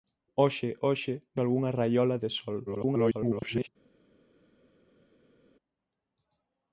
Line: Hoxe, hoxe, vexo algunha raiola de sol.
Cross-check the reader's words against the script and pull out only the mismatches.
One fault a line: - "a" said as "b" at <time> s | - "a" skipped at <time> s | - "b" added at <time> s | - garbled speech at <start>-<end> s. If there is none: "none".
- "vexo" skipped at 1.1 s
- garbled speech at 2.7-3.7 s